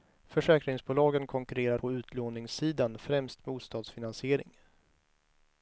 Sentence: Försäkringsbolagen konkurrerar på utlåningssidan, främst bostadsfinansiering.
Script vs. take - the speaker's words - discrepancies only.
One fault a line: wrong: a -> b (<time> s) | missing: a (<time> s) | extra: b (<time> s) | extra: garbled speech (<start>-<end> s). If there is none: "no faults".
no faults